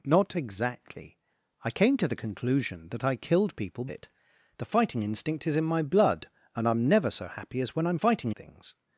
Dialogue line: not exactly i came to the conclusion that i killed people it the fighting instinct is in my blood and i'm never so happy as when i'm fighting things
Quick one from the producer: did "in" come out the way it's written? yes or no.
yes